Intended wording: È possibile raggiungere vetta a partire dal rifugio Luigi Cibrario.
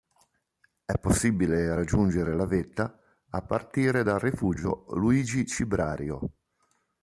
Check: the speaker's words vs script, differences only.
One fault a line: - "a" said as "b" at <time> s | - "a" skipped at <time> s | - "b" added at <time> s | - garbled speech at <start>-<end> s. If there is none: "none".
- "la" added at 2.3 s